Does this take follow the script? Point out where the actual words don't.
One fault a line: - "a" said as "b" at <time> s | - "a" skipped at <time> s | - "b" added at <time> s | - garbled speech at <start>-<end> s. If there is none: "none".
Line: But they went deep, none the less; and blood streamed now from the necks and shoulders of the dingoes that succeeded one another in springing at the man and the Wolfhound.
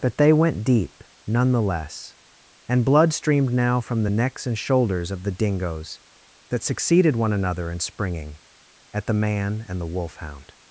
none